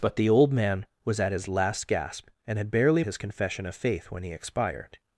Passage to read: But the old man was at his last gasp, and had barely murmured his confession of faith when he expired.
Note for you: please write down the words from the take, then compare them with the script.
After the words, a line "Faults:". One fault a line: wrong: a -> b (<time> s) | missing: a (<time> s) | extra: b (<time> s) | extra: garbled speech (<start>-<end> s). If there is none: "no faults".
But the old man was at his last gasp, and had barely his confession of faith when he expired.
Faults:
missing: murmured (3.0 s)